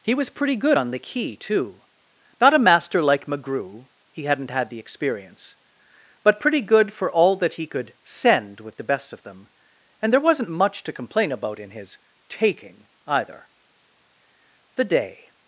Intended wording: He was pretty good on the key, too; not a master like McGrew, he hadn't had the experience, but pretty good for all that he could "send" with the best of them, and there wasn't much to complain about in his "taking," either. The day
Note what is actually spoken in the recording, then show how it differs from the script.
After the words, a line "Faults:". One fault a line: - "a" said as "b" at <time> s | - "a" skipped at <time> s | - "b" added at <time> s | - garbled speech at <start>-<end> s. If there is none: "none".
He was pretty good on the key, too; not a master like McGrew, he hadn't had the experience, but pretty good for all that he could "send" with the best of them, and there wasn't much to complain about in his "taking," either. The day
Faults:
none